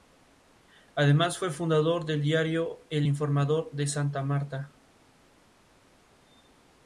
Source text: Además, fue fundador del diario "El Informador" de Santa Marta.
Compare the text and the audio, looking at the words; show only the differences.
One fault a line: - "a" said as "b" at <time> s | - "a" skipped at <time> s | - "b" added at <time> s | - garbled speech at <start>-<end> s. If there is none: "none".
none